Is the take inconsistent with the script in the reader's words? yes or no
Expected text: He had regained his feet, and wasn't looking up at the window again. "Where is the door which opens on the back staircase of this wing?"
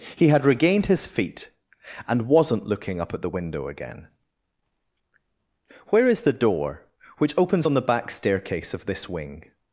no